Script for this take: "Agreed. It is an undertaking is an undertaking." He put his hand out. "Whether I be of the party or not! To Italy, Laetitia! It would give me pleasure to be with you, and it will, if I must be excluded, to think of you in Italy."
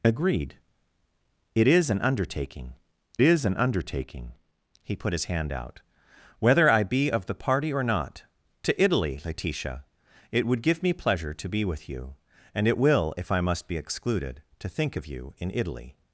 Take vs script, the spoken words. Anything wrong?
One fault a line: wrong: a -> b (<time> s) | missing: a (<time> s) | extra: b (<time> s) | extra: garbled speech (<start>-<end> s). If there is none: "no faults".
no faults